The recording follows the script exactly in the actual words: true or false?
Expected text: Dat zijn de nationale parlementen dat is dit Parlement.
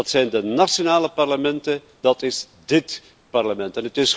true